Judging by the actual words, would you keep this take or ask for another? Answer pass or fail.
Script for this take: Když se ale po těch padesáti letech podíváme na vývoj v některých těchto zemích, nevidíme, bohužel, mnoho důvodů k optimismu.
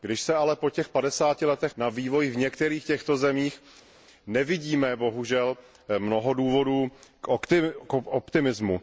fail